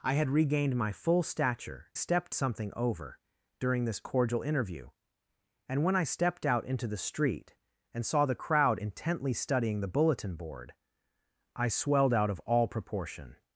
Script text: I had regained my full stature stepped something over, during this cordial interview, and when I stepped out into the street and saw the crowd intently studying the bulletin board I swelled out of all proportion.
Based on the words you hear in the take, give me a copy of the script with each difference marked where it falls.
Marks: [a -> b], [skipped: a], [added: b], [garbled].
I had regained my full stature stepped something over, during this cordial interview, and when I stepped out into the street and saw the crowd intently studying the bulletin board I swelled out of all proportion.